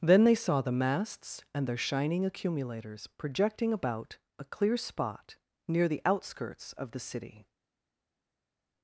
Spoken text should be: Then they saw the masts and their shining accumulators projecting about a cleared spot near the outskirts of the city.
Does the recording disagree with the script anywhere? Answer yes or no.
yes